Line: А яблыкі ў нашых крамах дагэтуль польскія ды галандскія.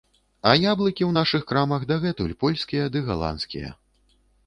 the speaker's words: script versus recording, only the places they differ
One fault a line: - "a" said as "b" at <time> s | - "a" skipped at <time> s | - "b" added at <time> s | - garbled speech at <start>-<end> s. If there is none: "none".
none